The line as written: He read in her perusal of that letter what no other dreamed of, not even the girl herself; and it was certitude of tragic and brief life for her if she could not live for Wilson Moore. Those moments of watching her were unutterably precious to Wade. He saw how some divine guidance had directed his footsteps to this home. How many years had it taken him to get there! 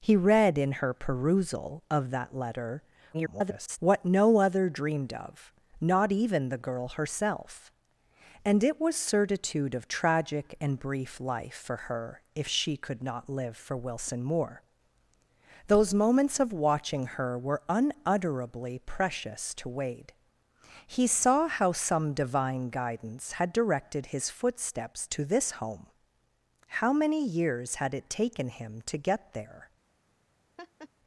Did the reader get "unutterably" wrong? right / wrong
right